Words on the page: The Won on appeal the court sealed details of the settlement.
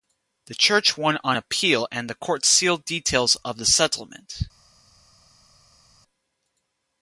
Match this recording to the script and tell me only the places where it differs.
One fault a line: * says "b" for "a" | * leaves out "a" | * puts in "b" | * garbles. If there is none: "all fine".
* puts in "Church"
* puts in "and"